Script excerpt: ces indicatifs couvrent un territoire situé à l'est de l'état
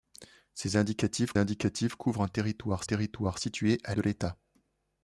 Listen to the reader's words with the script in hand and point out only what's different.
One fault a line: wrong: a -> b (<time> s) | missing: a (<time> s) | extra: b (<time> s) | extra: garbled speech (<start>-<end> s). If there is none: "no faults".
extra: indicatifs (1.4 s)
extra: territoire (2.8 s)
missing: l'est (3.9 s)